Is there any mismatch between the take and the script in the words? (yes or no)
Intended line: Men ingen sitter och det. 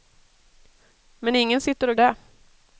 no